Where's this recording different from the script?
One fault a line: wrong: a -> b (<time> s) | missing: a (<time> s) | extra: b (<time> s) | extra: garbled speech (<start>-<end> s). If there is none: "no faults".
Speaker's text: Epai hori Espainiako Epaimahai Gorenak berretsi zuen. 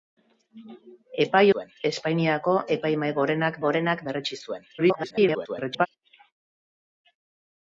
wrong: hori -> zuen (1.5 s)
extra: Gorenak (3.7 s)
extra: garbled speech (4.8-5.9 s)